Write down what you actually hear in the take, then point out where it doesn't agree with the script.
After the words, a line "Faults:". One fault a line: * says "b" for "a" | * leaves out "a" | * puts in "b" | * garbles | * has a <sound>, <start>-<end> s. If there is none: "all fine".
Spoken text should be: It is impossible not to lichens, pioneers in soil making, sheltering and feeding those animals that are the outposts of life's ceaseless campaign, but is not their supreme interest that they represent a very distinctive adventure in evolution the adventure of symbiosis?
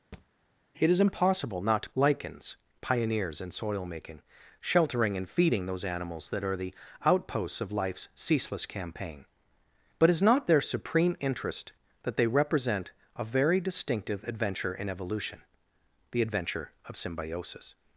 It is impossible not to lichens, pioneers in soil making, sheltering and feeding those animals that are the outposts of life's ceaseless campaign, but is not their supreme interest that they represent a very distinctive adventure in evolution the adventure of symbiosis?
Faults:
* has a thud, 0.1-0.3 s